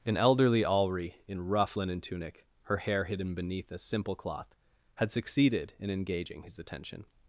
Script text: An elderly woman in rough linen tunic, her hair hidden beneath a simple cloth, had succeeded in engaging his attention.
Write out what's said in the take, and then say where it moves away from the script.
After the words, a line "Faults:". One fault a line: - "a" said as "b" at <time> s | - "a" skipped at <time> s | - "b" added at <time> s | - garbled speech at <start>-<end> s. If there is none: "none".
An elderly alri in rough linen tunic, her hair hidden beneath a simple cloth, had succeeded in engaging his attention.
Faults:
- "woman" said as "alri" at 0.6 s